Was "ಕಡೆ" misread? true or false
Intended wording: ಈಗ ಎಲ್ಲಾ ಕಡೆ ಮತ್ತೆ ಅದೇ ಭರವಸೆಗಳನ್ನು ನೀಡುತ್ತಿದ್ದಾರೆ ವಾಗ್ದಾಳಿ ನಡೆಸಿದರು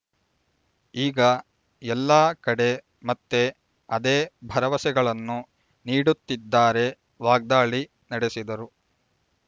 false